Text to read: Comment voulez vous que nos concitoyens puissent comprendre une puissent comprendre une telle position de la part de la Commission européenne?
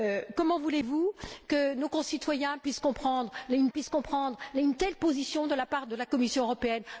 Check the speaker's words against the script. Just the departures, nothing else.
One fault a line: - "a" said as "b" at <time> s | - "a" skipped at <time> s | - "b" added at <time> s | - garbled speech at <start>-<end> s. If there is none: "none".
none